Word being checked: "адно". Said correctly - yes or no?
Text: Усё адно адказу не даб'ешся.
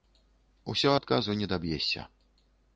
no